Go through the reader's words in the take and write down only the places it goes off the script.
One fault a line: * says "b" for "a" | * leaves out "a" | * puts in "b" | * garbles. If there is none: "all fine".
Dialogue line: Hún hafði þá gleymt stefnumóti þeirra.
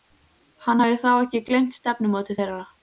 * says "Hann" for "Hún"
* puts in "ekki"